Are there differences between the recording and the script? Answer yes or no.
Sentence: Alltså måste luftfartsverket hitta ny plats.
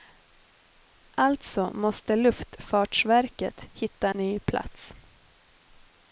no